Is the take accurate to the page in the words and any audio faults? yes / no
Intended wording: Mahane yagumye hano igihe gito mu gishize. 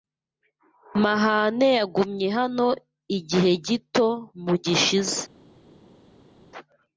yes